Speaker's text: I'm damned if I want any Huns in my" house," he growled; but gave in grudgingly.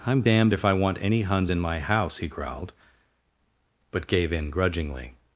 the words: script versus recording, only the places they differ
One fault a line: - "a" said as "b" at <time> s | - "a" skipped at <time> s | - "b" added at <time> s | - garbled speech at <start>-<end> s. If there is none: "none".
none